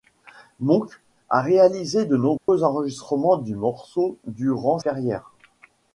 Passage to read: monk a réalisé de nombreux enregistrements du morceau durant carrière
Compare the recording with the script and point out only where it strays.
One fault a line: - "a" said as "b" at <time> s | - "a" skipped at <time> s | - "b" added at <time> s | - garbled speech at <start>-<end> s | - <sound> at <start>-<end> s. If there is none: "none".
- dropout at 2.4-2.5 s